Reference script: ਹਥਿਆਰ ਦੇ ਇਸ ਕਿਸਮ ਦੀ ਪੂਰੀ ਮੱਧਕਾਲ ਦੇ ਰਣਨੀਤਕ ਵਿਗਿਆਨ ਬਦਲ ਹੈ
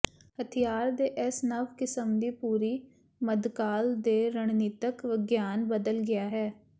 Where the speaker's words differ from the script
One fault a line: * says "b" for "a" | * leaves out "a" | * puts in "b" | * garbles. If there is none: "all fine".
* puts in "ਨਵ"
* puts in "ਗਿਆ"